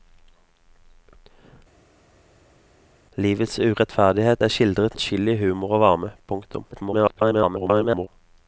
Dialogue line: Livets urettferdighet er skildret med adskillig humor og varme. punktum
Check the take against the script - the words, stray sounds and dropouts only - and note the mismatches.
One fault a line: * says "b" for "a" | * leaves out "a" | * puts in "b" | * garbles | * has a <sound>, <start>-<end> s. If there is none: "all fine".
* leaves out "med"
* garbles